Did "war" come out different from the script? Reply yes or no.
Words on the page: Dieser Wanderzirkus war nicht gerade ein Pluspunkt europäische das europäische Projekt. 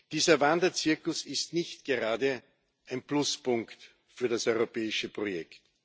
yes